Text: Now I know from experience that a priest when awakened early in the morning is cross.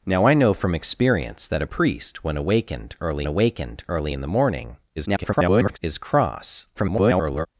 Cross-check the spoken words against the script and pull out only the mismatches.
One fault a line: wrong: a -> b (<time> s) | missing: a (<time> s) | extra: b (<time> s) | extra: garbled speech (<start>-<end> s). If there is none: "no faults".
extra: awakened early (3.3 s)
extra: garbled speech (5.0-5.8 s)
extra: garbled speech (6.7-7.5 s)